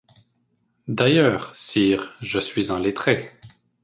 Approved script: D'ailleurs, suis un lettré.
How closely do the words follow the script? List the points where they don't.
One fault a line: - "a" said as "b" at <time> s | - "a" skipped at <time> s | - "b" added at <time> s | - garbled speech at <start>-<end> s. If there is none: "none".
- "sire je" added at 1.5 s